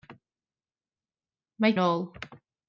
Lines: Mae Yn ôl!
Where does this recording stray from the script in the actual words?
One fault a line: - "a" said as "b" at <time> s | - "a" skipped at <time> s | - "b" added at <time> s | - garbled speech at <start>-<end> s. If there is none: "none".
none